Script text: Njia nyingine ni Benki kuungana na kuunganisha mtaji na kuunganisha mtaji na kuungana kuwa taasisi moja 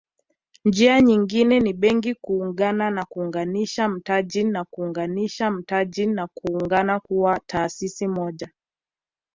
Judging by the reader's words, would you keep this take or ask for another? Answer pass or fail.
pass